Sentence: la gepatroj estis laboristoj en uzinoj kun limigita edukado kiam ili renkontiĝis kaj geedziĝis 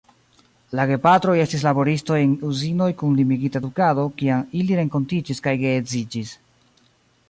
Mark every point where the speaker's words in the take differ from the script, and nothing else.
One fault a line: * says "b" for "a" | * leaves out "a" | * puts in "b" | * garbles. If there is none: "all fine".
all fine